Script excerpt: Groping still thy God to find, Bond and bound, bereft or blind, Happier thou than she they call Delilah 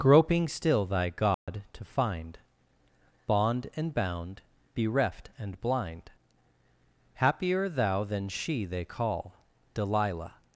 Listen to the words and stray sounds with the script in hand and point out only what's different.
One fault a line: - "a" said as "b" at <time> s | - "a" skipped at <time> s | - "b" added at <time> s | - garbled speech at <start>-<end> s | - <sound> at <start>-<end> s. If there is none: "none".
- dropout at 1.3-1.5 s
- "or" said as "and" at 5.4 s